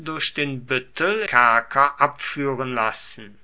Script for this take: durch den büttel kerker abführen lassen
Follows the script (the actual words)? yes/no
yes